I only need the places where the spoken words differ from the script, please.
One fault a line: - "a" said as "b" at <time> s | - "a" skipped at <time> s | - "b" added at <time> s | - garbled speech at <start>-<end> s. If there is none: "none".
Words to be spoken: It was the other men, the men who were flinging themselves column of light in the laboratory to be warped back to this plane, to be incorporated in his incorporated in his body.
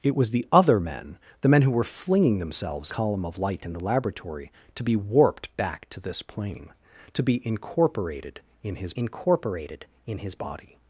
none